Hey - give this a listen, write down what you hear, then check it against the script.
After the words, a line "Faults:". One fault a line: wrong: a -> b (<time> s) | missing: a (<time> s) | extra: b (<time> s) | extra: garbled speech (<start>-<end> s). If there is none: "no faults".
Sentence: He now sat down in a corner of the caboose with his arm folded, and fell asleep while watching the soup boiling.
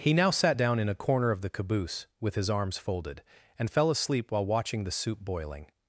He now sat down in a corner of the caboose with his arms folded, and fell asleep while watching the soup boiling.
Faults:
wrong: arm -> arms (2.5 s)